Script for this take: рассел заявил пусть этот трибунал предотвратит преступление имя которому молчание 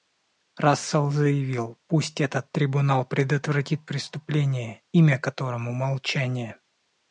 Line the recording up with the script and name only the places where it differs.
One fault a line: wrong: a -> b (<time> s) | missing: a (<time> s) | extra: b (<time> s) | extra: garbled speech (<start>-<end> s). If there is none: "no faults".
no faults